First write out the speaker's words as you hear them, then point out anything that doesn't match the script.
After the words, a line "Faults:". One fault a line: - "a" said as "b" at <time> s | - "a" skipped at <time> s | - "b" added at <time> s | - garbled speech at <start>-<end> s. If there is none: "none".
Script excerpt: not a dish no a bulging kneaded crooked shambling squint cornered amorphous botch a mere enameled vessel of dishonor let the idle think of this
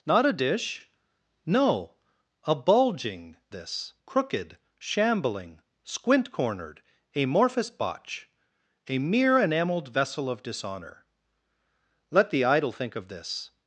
not a dish no a bulging this crooked shambling squint cornered amorphous botch a mere enameled vessel of dishonor let the idle think of this
Faults:
- "kneaded" said as "this" at 3.5 s